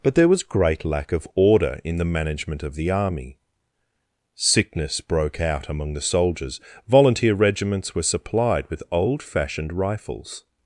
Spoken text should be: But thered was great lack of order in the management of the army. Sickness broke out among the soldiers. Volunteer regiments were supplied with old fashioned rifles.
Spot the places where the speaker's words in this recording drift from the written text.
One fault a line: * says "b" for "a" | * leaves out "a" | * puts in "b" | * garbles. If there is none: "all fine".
* says "there" for "thered"